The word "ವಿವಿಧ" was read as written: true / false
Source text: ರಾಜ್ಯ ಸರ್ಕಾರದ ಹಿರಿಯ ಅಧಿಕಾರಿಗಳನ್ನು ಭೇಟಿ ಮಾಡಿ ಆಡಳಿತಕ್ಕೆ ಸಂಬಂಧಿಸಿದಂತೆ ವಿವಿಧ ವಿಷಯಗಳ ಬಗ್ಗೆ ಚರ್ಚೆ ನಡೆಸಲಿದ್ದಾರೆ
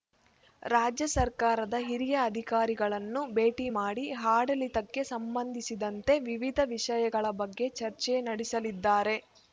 true